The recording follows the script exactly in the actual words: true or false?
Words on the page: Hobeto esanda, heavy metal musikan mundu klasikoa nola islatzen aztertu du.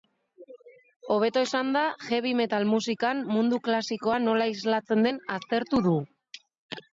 false